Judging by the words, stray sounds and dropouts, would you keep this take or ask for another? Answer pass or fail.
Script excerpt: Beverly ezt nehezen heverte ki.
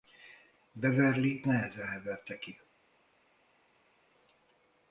fail